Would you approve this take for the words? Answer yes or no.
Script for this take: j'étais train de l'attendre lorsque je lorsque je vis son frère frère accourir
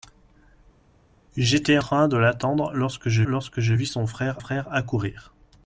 yes